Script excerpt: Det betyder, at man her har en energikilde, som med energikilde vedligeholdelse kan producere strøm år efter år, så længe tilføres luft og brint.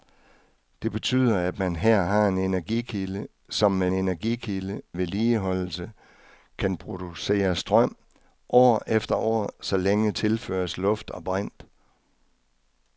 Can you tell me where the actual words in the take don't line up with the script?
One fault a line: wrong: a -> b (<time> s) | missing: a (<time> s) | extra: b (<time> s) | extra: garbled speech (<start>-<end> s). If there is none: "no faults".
no faults